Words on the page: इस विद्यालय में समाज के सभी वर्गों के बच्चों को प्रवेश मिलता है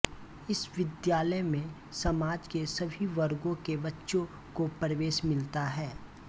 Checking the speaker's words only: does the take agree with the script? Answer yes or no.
yes